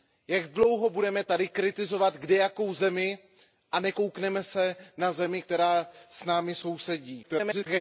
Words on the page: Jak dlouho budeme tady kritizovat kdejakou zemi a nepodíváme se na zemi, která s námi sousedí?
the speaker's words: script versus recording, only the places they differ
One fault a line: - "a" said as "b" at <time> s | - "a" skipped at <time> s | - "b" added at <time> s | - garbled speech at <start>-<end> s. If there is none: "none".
- garbled speech at 7.2-7.8 s